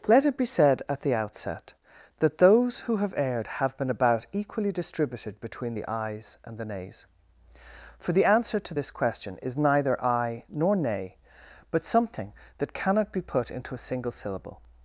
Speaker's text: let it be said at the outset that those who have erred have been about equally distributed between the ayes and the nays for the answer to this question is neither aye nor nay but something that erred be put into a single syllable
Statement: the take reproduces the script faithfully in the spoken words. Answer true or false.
false